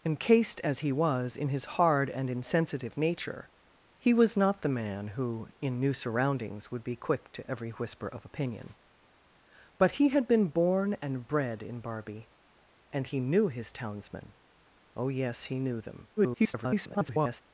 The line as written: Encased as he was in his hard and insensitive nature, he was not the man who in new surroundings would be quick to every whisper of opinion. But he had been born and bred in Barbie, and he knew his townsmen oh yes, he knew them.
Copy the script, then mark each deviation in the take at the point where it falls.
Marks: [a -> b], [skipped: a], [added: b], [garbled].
Encased as he was in his hard and insensitive nature, he was not the man who in new surroundings would be quick to every whisper of opinion. But he had been born and bred in Barbie, and he knew his townsmen oh yes, he knew them. [garbled]